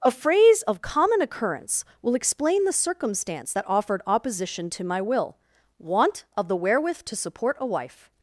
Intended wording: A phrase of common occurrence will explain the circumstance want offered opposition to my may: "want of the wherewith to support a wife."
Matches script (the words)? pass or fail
fail